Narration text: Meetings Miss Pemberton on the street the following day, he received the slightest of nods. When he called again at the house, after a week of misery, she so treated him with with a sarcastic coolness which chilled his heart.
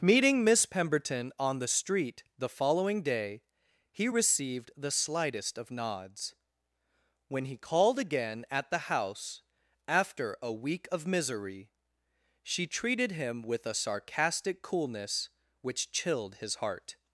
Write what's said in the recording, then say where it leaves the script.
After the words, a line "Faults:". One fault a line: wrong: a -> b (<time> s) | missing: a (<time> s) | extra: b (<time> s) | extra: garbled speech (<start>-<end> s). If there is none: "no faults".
Meeting Miss Pemberton on the street the following day, he received the slightest of nods. When he called again at the house, after a week of misery, she treated him with a sarcastic coolness which chilled his heart.
Faults:
wrong: Meetings -> Meeting (0.0 s)
missing: so (12.7 s)
missing: with (13.7 s)